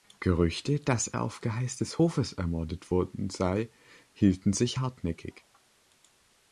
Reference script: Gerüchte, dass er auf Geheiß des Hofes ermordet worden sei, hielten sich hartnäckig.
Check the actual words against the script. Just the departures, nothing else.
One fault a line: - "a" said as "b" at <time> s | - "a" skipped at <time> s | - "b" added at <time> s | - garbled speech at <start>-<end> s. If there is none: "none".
none